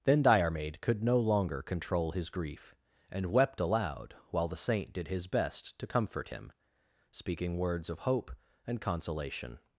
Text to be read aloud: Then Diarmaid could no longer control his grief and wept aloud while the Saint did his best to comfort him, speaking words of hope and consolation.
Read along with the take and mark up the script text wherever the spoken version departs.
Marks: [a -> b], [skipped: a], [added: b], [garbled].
Then Diarmaid could no longer control his grief and wept aloud while the Saint did his best to comfort him, speaking words of hope and consolation.